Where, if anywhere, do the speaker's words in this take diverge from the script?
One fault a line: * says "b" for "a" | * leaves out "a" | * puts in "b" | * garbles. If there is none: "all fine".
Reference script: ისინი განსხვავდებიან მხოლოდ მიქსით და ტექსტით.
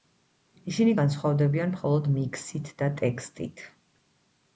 all fine